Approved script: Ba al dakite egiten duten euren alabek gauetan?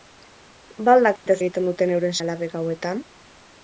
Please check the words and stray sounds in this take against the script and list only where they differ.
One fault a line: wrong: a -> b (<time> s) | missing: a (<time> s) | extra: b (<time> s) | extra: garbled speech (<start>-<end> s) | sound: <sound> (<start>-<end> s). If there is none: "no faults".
sound: dropout (1.2-1.3 s)